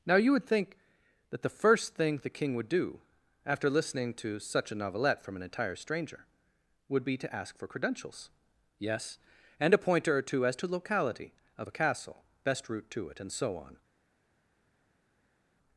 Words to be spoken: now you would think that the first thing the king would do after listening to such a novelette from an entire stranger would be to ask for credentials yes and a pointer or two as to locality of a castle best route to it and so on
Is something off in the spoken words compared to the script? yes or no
no